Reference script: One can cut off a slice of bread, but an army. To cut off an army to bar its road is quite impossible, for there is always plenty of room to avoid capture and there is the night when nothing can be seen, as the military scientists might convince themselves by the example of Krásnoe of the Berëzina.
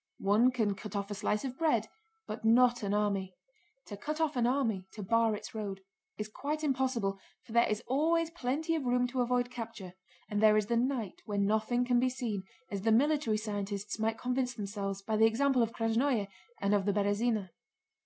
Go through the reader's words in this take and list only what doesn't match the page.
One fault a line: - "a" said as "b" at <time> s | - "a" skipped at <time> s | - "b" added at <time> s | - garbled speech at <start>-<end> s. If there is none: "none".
- "not" added at 2.4 s
- "and" added at 16.6 s